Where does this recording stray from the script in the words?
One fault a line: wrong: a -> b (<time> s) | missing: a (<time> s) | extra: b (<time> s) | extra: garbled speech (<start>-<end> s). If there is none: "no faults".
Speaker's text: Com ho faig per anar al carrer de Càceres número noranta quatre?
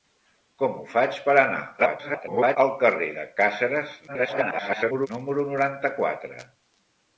extra: garbled speech (1.8-2.6 s)
extra: garbled speech (4.1-5.1 s)